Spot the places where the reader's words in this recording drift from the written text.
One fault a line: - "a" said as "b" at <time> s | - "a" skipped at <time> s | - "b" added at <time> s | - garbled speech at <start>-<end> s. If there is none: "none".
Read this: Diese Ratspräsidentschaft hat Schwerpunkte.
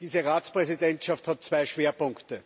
- "zwei" added at 1.4 s